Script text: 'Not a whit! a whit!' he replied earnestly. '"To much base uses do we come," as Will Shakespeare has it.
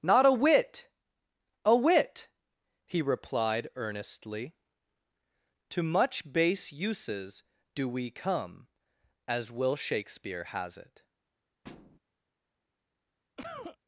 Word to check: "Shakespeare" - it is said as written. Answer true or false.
true